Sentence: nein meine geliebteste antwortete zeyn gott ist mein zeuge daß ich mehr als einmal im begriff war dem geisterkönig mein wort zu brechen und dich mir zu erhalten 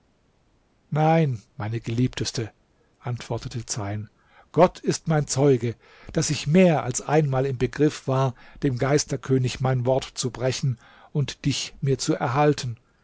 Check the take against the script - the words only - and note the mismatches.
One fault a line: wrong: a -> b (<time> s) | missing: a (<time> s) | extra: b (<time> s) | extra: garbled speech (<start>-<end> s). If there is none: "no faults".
no faults